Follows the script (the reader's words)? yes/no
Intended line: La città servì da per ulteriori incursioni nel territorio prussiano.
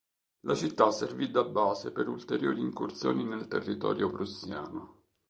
no